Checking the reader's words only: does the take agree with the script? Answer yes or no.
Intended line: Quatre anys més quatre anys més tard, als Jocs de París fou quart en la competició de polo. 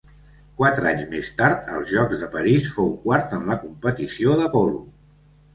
no